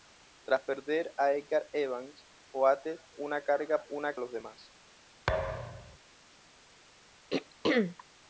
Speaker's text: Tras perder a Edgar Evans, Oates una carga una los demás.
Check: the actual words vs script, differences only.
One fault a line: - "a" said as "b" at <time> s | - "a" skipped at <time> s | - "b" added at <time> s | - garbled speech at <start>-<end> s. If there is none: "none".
none